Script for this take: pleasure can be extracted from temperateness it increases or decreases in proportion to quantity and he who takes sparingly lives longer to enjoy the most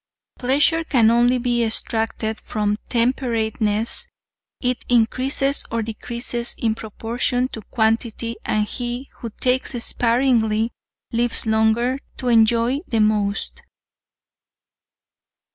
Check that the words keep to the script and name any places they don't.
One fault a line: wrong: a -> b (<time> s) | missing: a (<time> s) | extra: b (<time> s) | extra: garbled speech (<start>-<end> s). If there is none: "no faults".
extra: only (1.1 s)